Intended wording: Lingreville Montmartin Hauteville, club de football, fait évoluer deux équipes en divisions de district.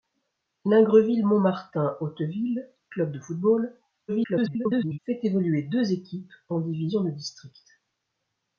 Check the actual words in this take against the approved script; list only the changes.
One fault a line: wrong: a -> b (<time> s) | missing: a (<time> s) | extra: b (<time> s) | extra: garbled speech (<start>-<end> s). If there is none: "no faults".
extra: garbled speech (4.1-5.0 s)